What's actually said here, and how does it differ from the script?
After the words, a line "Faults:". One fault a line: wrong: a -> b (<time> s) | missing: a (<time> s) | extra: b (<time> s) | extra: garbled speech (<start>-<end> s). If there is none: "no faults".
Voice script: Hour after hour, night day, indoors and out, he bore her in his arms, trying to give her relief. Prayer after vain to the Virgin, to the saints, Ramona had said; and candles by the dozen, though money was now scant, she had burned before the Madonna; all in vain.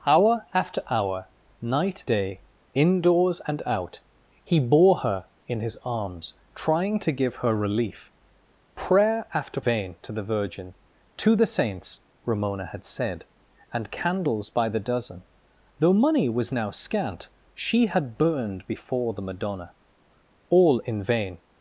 Hour after hour, night day, indoors and out, he bore her in his arms, trying to give her relief. Prayer after vain to the Virgin, to the saints, Ramona had said; and candles by the dozen, though money was now scant, she had burned before the Madonna; all in vain.
Faults:
no faults